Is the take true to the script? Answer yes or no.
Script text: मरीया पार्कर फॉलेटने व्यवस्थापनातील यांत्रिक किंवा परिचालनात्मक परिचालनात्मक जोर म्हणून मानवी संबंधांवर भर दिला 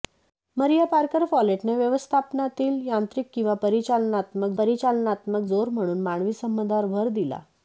yes